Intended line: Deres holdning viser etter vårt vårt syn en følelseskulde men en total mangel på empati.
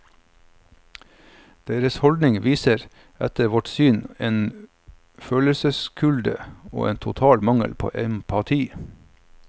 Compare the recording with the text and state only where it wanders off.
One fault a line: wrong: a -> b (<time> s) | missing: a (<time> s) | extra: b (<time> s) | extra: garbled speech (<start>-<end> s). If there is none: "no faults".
missing: vårt (3.7 s)
wrong: men -> og (6.7 s)